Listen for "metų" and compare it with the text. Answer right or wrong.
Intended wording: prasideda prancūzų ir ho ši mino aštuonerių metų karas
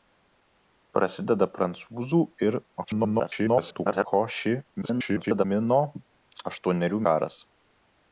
wrong